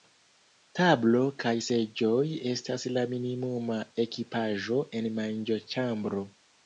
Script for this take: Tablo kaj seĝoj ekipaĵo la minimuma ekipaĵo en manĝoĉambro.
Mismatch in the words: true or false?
true